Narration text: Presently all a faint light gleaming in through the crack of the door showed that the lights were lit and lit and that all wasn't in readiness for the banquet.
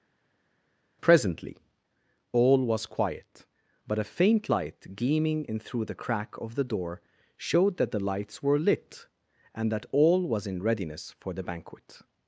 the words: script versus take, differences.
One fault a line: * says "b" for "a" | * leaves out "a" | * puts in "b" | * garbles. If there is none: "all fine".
* puts in "was quiet but"
* leaves out "lit and"
* says "was" for "wasn't"